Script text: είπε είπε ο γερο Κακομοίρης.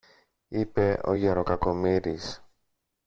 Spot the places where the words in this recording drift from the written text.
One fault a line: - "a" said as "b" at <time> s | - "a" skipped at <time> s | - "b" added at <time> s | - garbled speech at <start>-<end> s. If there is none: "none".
- "είπε" skipped at 1.0 s